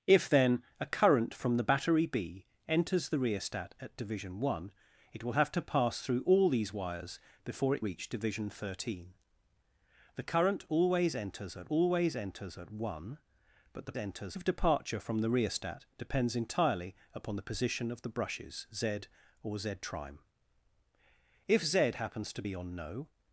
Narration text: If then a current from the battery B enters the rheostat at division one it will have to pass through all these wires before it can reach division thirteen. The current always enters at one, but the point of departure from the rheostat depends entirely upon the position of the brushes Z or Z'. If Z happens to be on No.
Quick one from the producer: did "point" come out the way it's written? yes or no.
no